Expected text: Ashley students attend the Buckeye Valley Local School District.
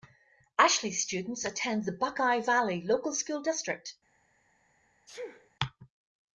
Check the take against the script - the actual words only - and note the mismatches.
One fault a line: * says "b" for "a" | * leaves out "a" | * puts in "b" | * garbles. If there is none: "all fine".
all fine